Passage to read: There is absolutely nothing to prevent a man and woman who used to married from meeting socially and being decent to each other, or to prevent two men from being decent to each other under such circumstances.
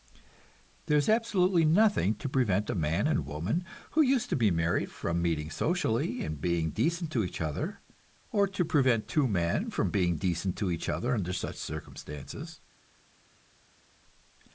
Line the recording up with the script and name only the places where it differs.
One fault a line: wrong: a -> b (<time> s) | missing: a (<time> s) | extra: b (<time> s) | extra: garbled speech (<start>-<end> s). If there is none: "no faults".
extra: be (4.3 s)